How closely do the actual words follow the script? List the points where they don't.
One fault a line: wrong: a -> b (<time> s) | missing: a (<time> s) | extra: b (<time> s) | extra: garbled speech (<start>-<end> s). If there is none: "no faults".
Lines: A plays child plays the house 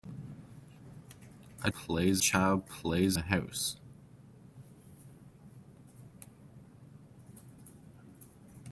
no faults